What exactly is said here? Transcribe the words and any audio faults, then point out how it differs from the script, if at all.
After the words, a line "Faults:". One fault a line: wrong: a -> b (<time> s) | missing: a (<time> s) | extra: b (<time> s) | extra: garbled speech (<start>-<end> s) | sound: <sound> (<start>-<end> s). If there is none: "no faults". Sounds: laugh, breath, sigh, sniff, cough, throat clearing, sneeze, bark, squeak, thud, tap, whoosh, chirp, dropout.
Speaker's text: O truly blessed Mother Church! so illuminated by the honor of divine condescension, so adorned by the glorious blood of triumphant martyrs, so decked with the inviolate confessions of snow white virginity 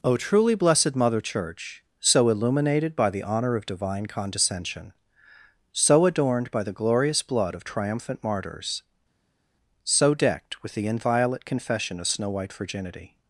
O truly blessed Mother Church! so illuminated by the honor of divine condescension, so adorned by the glorious blood of triumphant martyrs, so decked with the inviolate confession of snow white virginity
Faults:
wrong: confessions -> confession (11.4 s)